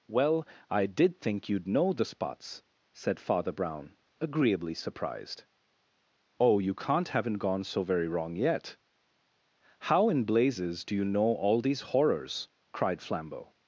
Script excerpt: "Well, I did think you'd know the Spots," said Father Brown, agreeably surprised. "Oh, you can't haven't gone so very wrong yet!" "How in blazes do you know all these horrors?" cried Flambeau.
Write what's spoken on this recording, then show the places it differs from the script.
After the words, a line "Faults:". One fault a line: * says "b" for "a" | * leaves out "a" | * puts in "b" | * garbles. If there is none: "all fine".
"Well, I did think you'd know the Spots," said Father Brown, agreeably surprised. "Oh, you can't haven't gone so very wrong yet!" "How in blazes do you know all these horrors?" cried Flambeau.
Faults:
all fine